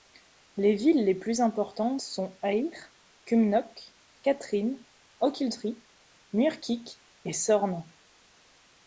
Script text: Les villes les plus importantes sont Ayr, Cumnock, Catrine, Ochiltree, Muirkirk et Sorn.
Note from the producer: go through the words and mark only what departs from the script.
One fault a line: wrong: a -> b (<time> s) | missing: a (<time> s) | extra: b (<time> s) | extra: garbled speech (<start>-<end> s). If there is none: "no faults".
no faults